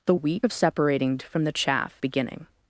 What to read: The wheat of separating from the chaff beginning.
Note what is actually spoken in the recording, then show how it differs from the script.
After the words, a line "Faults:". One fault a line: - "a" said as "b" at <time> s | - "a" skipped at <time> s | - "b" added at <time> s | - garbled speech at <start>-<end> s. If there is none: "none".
The wheat of separating from the chaff beginning.
Faults:
none